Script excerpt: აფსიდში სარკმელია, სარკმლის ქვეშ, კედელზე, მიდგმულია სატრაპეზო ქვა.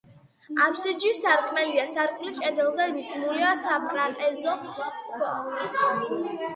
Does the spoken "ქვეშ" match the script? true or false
false